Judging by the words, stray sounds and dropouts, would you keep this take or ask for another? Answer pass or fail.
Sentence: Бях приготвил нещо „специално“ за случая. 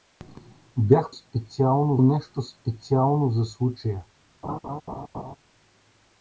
fail